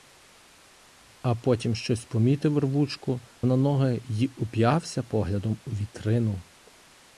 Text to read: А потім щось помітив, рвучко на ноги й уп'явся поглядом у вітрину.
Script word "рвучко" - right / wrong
right